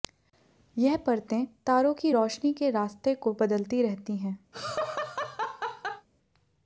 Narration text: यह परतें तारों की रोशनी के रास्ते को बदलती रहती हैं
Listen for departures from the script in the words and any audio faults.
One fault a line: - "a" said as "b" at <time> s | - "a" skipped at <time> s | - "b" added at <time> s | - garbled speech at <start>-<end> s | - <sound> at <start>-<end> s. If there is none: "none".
- laugh at 4.5-6.1 s